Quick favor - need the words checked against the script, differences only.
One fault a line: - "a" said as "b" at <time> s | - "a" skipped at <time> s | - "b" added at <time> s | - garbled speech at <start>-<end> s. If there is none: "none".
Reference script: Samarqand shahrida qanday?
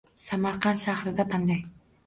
none